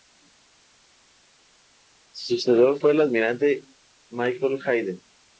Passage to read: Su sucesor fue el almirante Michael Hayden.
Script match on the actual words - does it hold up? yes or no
yes